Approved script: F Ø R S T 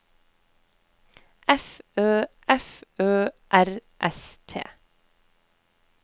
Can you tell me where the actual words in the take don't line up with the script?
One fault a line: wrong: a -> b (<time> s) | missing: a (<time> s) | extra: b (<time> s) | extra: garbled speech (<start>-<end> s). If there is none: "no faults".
extra: f Ø (2.5 s)